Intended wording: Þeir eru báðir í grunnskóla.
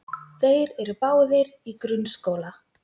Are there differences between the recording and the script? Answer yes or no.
no